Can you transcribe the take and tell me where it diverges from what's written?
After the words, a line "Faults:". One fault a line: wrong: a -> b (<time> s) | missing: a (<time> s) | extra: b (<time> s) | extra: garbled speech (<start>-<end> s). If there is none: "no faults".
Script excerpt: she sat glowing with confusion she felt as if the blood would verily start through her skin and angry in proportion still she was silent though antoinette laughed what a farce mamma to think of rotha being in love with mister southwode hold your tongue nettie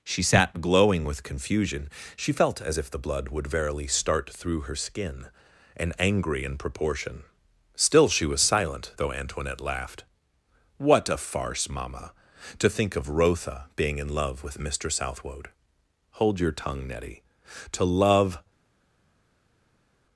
she sat glowing with confusion she felt as if the blood would verily start through her skin and angry in proportion still she was silent though antoinette laughed what a farce mamma to think of rotha being in love with mister southwode hold your tongue nettie to love
Faults:
extra: to love (17.7 s)